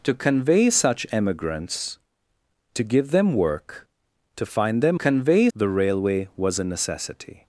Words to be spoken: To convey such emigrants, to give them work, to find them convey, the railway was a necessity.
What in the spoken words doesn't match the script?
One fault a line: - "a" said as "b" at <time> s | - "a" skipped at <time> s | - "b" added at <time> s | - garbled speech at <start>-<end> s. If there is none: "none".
none